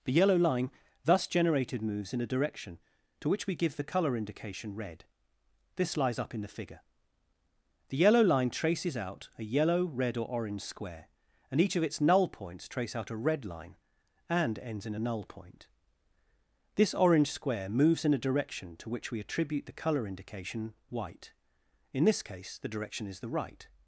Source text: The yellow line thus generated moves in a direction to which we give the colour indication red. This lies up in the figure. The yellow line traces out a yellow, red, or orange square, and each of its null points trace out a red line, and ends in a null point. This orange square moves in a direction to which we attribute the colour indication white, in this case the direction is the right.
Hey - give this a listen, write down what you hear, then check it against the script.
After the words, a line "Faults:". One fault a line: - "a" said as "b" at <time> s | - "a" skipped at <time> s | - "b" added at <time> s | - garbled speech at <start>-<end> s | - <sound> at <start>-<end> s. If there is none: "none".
The yellow line thus generated moves in a direction to which we give the colour indication red. This lies up in the figure. The yellow line traces out a yellow, red, or orange square, and each of its null points trace out a red line, and ends in a null point. This orange square moves in a direction to which we attribute the colour indication white, in this case the direction is the right.
Faults:
none